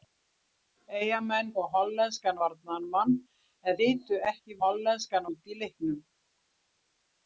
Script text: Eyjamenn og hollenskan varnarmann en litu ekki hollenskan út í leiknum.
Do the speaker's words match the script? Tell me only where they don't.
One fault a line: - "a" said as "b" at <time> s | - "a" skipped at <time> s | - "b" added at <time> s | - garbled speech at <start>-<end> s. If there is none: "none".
none